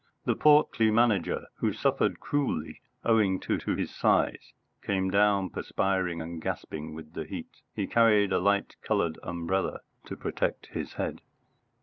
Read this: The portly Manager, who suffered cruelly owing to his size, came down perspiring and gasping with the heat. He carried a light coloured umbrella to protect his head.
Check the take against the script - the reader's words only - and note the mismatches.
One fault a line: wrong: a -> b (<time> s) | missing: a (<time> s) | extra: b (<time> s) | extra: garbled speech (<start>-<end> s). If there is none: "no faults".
extra: to (3.6 s)